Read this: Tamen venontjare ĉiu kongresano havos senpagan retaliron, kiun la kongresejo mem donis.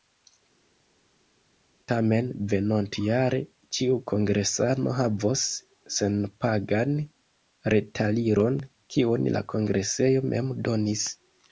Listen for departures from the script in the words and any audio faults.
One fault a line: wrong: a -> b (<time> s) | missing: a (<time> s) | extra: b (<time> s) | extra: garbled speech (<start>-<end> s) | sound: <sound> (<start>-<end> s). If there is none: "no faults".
no faults